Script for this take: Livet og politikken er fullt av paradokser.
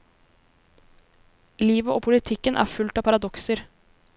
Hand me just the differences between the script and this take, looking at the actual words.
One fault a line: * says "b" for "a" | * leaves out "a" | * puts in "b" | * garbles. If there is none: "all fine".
all fine